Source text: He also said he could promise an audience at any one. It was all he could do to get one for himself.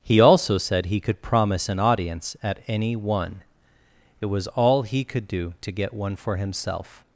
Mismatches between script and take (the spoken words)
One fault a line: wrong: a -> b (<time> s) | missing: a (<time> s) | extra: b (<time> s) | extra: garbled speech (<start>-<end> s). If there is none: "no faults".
no faults